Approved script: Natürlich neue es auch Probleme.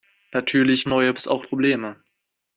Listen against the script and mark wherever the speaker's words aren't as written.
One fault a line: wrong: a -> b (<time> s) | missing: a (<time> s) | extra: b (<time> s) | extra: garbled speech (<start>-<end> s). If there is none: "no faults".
no faults